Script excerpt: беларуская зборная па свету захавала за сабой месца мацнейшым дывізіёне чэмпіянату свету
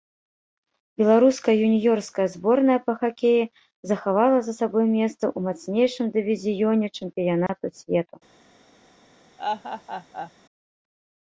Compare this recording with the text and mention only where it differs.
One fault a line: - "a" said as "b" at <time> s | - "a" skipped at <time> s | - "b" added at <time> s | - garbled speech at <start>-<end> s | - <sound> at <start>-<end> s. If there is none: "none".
- "юніёрская" added at 1.7 s
- "свету" said as "хакеі" at 3.0 s
- "ў" added at 5.2 s
- dropout at 7.5-7.5 s
- laugh at 9.4-10.3 s